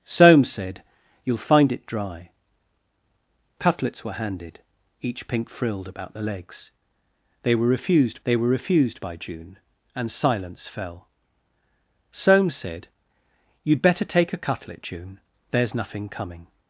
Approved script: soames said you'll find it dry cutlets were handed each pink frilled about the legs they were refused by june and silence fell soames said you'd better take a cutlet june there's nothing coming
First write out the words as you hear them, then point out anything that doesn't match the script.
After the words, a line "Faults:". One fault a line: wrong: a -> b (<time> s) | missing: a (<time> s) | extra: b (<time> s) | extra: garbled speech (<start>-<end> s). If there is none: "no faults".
soames said you'll find it dry cutlets were handed each pink frilled about the legs they were refused they were refused by june and silence fell soames said you'd better take a cutlet june there's nothing coming
Faults:
extra: they were refused (8.2 s)